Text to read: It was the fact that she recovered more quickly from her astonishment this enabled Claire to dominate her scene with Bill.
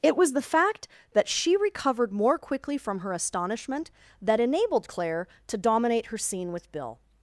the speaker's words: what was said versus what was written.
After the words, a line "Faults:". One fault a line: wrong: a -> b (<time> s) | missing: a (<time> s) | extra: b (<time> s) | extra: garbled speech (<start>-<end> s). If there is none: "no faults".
It was the fact that she recovered more quickly from her astonishment that enabled Claire to dominate her scene with Bill.
Faults:
wrong: this -> that (4.2 s)